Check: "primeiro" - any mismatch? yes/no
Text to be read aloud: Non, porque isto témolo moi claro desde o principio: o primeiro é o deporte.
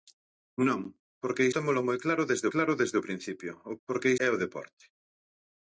yes